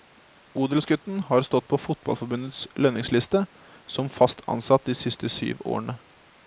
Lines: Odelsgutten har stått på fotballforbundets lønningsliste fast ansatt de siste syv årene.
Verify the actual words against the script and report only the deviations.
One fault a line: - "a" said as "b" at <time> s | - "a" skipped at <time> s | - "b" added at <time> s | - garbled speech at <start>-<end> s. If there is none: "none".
- "som" added at 3.9 s